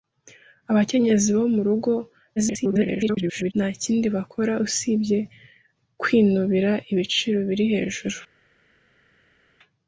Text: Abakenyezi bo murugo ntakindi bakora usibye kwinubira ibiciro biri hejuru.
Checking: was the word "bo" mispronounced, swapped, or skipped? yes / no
no